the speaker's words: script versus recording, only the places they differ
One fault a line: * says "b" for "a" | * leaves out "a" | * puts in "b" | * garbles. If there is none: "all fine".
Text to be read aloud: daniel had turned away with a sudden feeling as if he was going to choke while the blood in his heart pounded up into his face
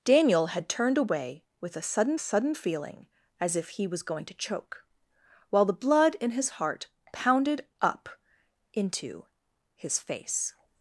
* puts in "sudden"